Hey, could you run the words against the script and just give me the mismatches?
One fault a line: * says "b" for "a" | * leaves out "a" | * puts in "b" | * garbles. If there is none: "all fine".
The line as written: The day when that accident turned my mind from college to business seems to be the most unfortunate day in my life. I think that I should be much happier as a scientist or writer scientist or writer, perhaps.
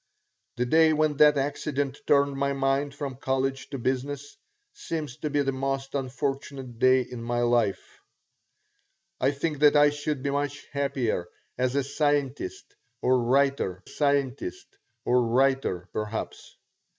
all fine